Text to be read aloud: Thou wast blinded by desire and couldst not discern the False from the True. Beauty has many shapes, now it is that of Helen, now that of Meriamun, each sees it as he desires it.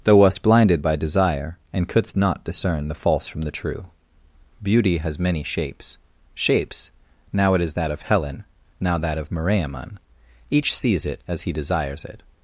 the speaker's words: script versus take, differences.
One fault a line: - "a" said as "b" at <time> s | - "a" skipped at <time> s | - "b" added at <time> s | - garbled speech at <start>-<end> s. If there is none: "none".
- "shapes" added at 6.3 s